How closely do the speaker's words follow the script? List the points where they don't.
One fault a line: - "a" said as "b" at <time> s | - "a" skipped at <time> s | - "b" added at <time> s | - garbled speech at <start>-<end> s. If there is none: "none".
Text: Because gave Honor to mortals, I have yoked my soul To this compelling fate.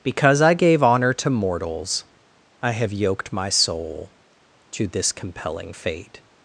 - "I" added at 0.4 s